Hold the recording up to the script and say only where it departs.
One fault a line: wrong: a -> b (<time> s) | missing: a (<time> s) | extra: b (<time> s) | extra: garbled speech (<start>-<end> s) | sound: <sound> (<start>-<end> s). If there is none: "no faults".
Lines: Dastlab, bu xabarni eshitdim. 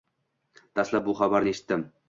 no faults